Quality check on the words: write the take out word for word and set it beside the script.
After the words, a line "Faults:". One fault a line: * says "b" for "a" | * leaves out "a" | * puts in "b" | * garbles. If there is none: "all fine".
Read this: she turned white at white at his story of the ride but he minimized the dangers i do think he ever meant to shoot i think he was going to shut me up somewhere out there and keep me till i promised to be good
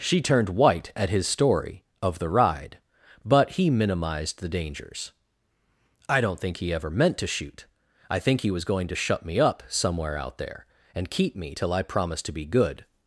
she turned white at his story of the ride but he minimized the dangers i don't think he ever meant to shoot i think he was going to shut me up somewhere out there and keep me till i promised to be good
Faults:
* leaves out "white at"
* says "don't" for "do"